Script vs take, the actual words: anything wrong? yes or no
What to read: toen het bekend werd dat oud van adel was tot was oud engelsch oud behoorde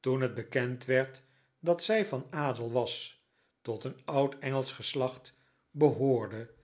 yes